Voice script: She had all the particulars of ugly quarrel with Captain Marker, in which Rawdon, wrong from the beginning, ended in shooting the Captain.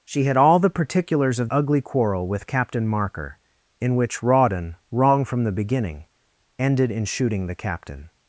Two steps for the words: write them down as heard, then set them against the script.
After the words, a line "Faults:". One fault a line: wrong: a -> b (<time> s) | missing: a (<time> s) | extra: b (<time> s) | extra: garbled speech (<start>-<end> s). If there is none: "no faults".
She had all the particulars of ugly quarrel with Captain Marker, in which Rawdon, wrong from the beginning, ended in shooting the Captain.
Faults:
no faults